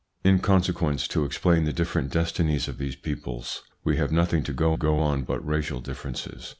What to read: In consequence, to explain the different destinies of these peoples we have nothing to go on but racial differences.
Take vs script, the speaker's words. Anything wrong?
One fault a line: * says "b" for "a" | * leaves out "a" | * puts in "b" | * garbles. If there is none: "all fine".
* puts in "go"